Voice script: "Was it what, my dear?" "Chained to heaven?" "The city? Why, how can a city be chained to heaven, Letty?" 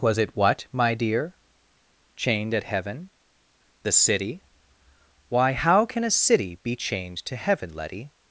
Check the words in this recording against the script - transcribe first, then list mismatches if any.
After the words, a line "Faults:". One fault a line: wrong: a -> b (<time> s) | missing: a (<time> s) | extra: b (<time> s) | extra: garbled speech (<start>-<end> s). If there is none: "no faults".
"Was it what, my dear?" "Chained at heaven?" "The city? Why, how can a city be chained to heaven, Letty?"
Faults:
wrong: to -> at (2.5 s)